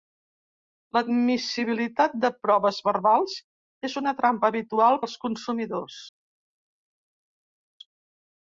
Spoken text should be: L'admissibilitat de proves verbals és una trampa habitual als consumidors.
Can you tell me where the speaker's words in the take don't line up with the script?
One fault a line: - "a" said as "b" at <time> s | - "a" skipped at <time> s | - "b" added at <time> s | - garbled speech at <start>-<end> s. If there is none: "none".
none